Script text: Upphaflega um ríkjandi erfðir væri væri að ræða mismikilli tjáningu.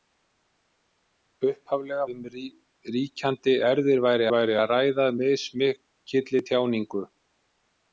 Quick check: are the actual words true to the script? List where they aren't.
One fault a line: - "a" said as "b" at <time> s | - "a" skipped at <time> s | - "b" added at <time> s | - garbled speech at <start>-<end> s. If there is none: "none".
none